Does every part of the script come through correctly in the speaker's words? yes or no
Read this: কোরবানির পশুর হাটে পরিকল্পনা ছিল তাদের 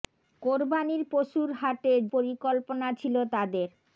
yes